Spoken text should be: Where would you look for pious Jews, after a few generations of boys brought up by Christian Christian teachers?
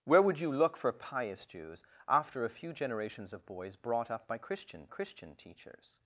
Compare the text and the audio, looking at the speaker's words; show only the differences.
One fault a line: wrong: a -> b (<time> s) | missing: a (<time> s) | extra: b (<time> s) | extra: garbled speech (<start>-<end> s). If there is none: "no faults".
no faults